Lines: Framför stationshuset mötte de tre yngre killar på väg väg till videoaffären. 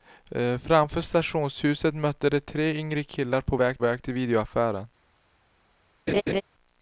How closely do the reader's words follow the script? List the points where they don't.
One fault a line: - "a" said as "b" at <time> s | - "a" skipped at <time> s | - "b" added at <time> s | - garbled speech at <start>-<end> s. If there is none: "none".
none